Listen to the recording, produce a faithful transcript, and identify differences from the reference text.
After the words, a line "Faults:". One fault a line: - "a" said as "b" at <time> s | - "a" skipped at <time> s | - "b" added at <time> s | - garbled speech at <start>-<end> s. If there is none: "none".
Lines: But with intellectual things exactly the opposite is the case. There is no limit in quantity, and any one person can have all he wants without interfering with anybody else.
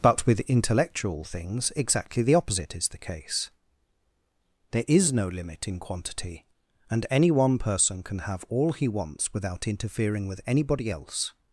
But with intellectual things exactly the opposite is the case. There is no limit in quantity, and any one person can have all he wants without interfering with anybody else.
Faults:
none